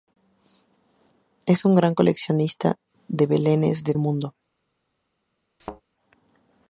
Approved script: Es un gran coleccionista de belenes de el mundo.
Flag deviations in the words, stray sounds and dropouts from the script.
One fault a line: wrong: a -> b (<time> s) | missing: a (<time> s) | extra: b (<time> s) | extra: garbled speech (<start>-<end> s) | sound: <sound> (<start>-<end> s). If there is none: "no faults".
sound: thud (5.6-5.8 s)